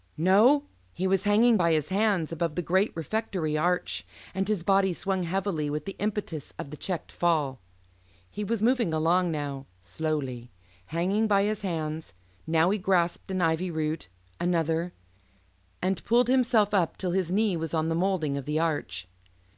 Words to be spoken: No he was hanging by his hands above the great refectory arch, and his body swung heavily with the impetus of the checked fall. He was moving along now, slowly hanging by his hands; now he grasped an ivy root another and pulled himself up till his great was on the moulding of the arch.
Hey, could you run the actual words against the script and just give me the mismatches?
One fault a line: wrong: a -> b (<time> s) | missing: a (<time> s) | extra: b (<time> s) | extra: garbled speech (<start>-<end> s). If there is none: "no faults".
wrong: great -> knee (17.3 s)